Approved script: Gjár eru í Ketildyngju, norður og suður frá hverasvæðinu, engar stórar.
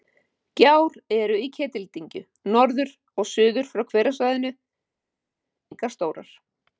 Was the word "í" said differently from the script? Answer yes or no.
no